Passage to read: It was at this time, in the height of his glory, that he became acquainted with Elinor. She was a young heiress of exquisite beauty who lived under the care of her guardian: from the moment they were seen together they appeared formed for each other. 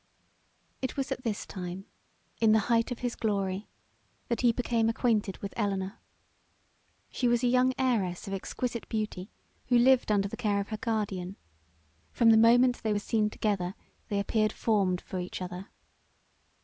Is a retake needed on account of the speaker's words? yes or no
no